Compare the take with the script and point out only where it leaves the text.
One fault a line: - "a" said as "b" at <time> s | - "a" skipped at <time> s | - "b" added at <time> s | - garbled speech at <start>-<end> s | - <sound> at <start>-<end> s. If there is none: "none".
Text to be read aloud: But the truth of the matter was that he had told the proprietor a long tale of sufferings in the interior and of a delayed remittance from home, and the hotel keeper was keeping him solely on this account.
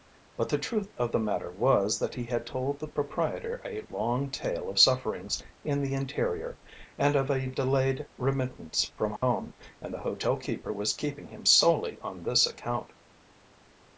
- dropout at 9.2-9.2 s